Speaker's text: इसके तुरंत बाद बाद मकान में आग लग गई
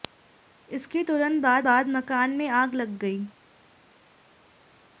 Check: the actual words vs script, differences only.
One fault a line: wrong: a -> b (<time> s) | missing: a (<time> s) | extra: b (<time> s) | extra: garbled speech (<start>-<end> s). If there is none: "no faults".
no faults